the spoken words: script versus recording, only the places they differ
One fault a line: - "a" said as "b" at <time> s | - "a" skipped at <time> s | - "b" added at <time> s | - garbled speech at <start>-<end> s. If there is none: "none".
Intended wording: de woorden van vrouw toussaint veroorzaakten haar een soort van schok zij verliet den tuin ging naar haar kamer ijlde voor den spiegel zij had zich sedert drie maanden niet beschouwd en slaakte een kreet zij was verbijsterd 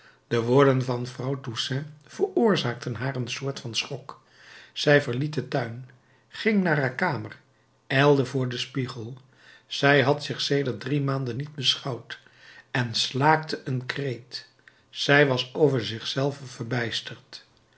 - "over zich zelve" added at 15.5 s